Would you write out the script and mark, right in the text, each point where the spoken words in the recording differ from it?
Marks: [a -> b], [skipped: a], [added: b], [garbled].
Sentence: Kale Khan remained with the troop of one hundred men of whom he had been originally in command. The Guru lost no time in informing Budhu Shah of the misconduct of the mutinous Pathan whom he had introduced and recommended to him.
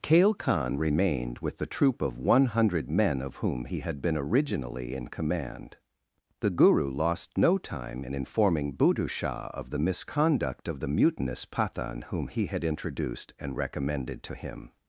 Kale Khan remained with the troop of one hundred men of whom he had been originally in command. The Guru lost no time in informing Budhu Shah of the misconduct of the mutinous Pathan whom he had introduced and recommended to him.